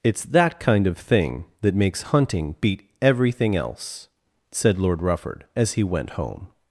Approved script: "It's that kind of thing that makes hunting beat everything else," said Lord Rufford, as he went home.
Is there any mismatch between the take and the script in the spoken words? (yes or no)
no